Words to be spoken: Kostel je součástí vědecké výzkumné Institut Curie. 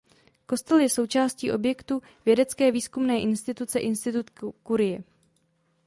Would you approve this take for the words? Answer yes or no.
no